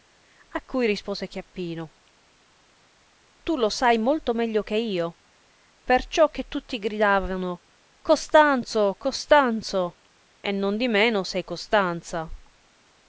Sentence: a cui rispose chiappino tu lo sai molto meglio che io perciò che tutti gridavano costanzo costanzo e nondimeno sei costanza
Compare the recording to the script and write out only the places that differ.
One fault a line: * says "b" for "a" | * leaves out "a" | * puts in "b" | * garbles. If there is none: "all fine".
all fine